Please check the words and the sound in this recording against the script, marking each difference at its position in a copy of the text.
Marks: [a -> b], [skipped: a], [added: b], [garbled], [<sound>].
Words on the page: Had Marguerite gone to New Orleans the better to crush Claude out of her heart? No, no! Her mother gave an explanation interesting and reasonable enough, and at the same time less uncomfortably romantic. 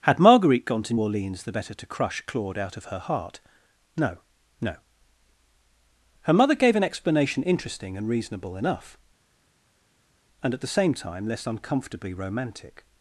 Had Marguerite gone to [skipped: New] Orleans the better to crush Claude out of her heart? No, no! Her mother gave an explanation interesting and reasonable enough, and at the same time less uncomfortably romantic.